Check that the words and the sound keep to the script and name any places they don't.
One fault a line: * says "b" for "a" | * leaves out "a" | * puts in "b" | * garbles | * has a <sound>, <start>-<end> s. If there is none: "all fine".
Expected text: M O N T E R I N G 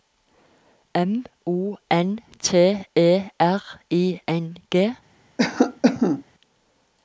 * has a cough, 5.4-6.2 s